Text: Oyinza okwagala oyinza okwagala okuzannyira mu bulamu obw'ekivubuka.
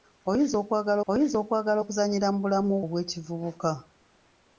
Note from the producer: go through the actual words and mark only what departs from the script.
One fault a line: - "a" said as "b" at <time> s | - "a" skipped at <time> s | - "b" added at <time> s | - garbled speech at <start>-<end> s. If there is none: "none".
none